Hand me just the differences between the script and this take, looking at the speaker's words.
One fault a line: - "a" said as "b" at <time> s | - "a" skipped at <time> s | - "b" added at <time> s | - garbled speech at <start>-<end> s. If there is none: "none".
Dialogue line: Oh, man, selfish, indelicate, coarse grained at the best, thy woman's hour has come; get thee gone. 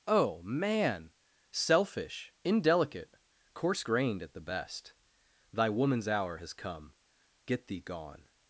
none